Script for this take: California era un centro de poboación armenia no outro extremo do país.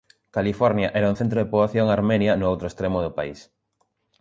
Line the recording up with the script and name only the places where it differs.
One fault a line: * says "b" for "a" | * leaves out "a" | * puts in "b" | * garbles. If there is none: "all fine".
all fine